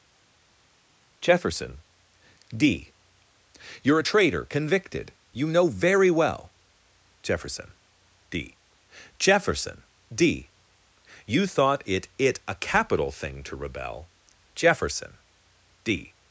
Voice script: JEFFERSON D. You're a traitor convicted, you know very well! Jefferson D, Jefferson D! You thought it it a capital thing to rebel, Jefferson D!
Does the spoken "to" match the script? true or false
true